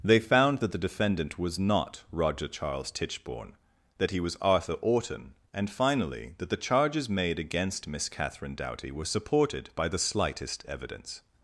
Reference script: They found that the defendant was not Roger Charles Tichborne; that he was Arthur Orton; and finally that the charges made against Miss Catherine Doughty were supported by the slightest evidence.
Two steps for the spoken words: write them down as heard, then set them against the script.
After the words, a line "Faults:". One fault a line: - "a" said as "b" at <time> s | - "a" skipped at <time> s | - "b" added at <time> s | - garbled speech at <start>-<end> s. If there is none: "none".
They found that the defendant was not Roger Charles Tichborne; that he was Arthur Orton; and finally that the charges made against Miss Catherine Doughty were supported by the slightest evidence.
Faults:
none